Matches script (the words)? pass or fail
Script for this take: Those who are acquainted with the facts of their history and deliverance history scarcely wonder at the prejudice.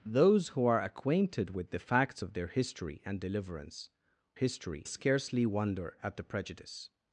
pass